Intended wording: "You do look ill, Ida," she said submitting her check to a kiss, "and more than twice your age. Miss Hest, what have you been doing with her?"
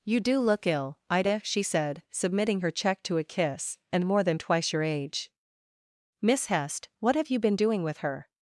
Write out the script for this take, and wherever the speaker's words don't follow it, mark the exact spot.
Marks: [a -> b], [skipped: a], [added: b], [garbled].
"You do look ill, Ida," she said submitting her check to a kiss, "and more than twice your age. Miss Hest, what have you been doing with her?"